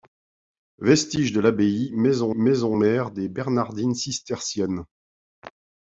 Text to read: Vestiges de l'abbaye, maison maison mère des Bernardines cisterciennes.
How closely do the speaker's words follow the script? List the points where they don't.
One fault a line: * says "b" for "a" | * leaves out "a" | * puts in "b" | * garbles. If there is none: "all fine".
all fine